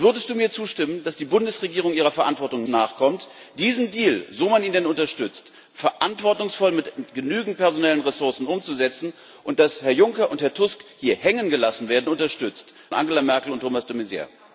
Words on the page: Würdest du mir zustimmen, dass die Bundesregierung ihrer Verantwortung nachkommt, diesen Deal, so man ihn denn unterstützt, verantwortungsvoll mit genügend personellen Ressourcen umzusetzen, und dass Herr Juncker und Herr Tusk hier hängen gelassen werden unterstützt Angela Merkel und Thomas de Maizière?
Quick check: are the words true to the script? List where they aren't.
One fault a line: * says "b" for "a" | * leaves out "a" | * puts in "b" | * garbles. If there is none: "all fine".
all fine